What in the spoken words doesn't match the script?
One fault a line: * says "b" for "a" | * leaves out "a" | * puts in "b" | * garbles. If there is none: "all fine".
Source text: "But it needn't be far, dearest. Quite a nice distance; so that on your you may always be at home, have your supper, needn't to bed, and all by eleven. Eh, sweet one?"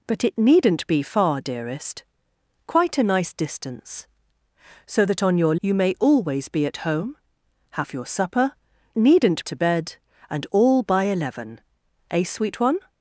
all fine